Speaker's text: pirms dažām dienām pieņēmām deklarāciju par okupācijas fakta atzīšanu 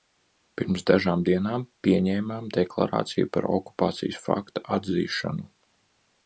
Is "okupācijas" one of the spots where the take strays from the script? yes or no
no